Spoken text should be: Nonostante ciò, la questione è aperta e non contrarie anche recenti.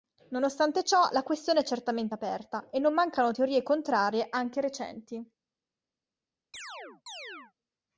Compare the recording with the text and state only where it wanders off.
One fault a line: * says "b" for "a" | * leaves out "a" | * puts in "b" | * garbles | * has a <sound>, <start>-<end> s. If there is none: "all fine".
* puts in "certamente"
* puts in "mancano teorie"
* has a chirp, 6.5-7.5 s